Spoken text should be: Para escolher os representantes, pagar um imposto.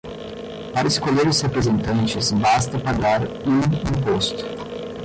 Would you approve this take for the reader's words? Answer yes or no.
no